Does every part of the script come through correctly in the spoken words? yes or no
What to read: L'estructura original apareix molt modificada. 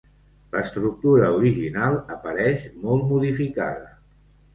yes